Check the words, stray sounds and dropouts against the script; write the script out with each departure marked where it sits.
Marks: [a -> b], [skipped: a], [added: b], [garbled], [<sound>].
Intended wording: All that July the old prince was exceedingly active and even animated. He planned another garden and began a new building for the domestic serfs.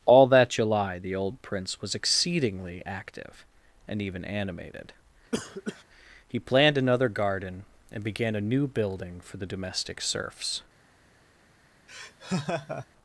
All that July the old prince was exceedingly active and even animated. [cough] He planned another garden and began a new building for the domestic serfs. [laugh]